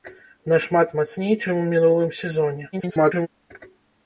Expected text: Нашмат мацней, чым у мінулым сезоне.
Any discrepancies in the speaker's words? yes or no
yes